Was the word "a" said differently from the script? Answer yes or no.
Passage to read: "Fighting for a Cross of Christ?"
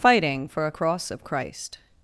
no